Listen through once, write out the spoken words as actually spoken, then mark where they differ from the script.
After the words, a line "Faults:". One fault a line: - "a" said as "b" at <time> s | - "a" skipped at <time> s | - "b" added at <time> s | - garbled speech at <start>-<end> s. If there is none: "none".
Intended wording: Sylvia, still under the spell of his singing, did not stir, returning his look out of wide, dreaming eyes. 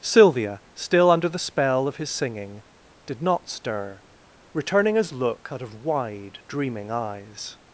Sylvia, still under the spell of his singing, did not stir, returning his look out of wide, dreaming eyes.
Faults:
none